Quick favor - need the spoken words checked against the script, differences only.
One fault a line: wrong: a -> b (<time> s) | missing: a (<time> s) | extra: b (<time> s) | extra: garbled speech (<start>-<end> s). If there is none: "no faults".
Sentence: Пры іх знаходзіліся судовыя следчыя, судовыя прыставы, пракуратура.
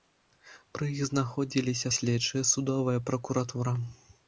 missing: судовыя (1.9 s)
missing: прыставы (3.0 s)